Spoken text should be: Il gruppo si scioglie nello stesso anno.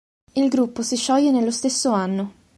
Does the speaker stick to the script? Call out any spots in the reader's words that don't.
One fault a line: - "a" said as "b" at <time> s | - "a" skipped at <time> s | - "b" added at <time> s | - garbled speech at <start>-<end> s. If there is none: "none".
none